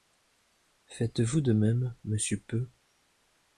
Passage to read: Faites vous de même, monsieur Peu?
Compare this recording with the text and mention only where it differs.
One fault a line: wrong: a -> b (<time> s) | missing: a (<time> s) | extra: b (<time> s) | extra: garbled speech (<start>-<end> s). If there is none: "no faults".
no faults